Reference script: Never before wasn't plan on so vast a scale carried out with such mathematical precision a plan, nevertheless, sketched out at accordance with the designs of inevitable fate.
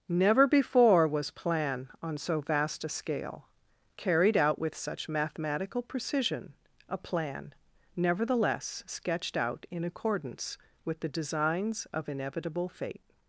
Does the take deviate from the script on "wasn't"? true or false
true